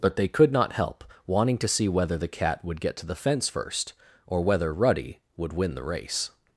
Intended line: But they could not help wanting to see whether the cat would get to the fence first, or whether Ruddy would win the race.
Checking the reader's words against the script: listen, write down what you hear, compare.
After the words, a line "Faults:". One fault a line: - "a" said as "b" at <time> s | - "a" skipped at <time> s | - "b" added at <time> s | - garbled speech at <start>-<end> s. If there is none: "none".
But they could not help wanting to see whether the cat would get to the fence first, or whether Ruddy would win the race.
Faults:
none